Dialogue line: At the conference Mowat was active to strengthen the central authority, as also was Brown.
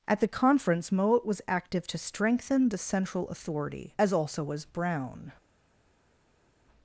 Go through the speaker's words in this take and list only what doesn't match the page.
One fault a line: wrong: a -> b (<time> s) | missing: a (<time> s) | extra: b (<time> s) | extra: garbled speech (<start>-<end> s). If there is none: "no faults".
no faults